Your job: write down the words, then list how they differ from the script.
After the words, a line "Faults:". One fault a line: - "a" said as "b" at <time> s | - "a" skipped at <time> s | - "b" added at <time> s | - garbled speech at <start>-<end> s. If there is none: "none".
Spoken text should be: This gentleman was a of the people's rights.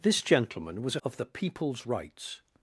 This gentleman was a of the people's rights.
Faults:
none